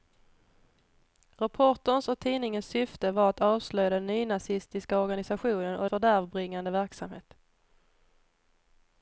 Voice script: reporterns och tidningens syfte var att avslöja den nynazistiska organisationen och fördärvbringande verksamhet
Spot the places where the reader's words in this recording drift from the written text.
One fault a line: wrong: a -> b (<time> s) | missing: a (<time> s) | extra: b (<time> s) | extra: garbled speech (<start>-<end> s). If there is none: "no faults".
no faults